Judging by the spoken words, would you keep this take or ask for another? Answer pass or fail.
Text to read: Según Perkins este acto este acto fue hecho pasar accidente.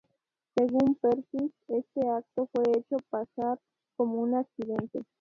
fail